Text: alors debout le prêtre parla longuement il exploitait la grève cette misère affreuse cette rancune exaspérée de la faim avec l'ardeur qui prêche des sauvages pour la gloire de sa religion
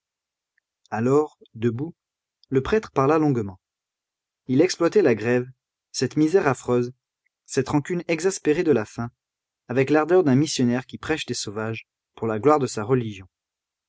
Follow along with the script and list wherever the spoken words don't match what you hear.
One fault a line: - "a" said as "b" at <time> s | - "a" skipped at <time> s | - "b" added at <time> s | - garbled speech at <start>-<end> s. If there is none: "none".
- "d'un missionnaire" added at 10.2 s